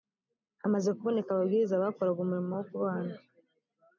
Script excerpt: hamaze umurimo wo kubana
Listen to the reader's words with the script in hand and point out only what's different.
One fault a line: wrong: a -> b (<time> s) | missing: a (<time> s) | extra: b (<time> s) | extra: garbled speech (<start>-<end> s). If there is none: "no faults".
extra: kuboneka ababwiriza bakoraga (1.0 s)